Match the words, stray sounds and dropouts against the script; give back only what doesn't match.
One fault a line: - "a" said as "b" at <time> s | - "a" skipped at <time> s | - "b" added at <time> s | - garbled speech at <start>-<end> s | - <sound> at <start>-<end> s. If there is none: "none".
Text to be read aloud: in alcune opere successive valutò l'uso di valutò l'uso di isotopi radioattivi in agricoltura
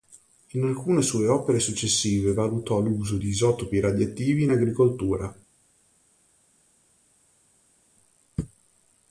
- "sue" added at 1.0 s
- "valutò l'uso di" skipped at 3.3 s